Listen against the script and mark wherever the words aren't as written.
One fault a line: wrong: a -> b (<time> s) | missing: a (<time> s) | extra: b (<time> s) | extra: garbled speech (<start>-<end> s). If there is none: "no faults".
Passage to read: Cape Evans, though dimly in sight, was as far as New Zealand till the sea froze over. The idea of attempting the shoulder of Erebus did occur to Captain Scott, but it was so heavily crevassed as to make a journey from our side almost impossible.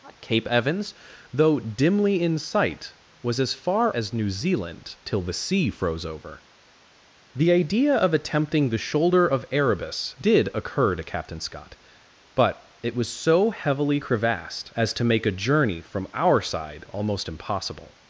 no faults